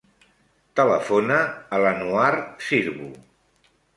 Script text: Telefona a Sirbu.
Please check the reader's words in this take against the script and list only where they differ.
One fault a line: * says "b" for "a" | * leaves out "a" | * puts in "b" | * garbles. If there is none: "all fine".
* puts in "l'Anouar"